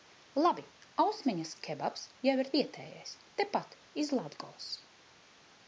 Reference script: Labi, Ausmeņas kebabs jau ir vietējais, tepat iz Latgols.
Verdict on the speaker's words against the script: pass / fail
pass